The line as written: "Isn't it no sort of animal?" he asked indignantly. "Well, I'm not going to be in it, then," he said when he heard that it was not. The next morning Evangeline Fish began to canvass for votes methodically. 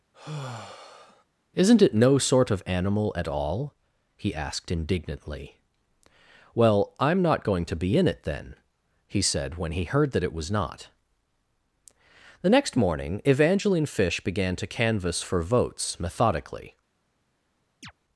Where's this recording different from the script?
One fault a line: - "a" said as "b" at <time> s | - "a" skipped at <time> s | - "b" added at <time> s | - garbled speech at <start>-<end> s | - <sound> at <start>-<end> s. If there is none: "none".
- sigh at 0.1-1.2 s
- "at all" added at 3.1 s
- chirp at 17.8-17.9 s